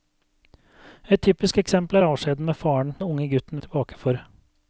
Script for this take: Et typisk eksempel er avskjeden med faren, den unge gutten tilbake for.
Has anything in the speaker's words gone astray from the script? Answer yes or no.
no